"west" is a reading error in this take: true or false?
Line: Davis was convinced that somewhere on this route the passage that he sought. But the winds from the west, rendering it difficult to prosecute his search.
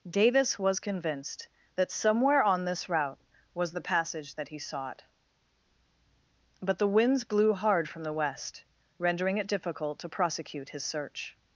false